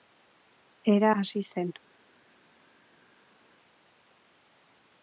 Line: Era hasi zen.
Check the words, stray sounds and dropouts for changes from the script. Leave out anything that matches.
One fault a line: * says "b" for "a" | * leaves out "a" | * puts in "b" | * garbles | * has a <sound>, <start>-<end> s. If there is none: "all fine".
all fine